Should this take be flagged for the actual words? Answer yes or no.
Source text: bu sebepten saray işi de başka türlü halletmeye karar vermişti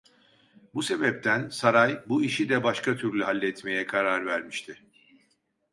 yes